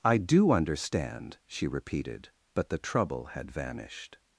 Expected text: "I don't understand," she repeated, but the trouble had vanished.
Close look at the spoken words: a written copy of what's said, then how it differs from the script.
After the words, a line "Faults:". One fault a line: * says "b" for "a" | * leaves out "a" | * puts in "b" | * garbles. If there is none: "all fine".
"I do understand," she repeated, but the trouble had vanished.
Faults:
* says "do" for "don't"